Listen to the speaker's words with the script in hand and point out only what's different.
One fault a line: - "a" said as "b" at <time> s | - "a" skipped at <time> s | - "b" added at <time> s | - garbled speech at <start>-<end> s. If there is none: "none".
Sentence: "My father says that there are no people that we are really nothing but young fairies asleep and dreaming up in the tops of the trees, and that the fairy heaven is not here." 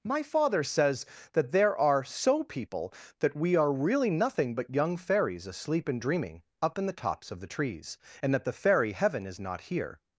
- "no" said as "so" at 2.0 s